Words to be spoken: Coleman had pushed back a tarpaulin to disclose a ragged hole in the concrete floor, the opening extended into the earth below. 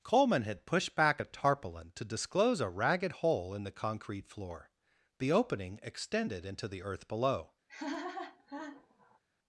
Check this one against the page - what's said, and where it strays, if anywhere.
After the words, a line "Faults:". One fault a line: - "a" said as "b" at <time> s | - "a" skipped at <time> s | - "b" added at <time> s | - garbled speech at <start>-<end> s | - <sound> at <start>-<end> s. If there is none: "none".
Coleman had pushed back a tarpaulin to disclose a ragged hole in the concrete floor, the opening extended into the earth below.
Faults:
- laugh at 7.7-9.2 s